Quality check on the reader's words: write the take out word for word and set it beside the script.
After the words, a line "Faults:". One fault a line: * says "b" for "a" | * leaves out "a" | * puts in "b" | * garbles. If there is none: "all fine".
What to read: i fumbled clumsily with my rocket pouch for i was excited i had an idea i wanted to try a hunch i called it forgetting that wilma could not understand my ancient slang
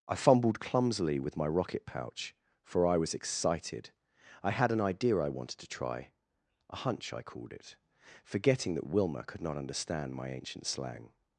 i fumbled clumsily with my rocket pouch for i was excited i had an idea i wanted to try a hunch i called it forgetting that wilma could not understand my ancient slang
Faults:
all fine